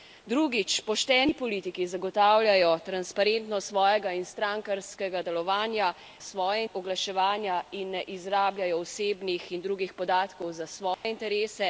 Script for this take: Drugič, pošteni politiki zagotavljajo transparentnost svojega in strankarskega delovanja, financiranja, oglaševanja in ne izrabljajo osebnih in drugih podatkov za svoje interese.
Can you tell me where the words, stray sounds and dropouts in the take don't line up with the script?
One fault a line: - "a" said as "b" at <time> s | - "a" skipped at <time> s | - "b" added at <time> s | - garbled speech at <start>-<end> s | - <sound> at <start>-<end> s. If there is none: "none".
- "financiranja" said as "svoje" at 6.2 s
- dropout at 10.9-11.0 s